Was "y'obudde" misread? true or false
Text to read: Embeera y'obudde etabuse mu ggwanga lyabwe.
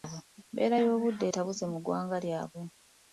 false